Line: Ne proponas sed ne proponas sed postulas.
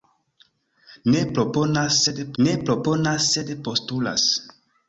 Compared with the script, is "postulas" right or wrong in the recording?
right